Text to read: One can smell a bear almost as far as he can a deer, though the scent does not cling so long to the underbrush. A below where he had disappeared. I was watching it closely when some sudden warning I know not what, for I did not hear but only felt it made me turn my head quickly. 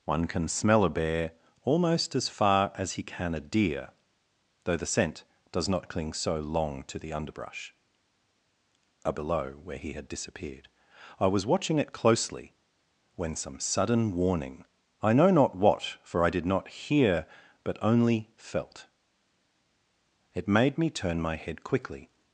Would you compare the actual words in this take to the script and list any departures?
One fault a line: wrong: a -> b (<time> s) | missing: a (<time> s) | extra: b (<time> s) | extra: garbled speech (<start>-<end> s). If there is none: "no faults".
no faults